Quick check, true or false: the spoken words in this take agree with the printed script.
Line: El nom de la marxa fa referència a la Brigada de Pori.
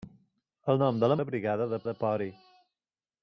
false